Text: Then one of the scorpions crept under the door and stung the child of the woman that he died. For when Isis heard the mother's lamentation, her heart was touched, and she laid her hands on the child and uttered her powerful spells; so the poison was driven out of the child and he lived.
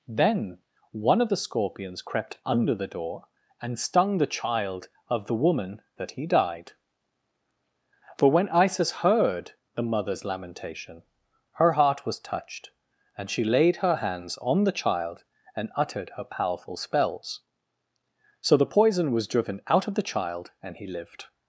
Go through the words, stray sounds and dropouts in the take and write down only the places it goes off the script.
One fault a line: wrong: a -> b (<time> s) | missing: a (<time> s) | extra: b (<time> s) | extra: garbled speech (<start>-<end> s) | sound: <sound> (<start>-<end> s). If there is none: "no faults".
no faults